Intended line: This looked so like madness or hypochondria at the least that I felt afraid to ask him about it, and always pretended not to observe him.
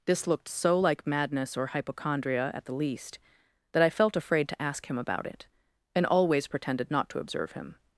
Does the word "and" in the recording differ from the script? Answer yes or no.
no